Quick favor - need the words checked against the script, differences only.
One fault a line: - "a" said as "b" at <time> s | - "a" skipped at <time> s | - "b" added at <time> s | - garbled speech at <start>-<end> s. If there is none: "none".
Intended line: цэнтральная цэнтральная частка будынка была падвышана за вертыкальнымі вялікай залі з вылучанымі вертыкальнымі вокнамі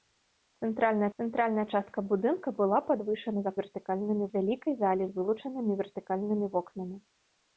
none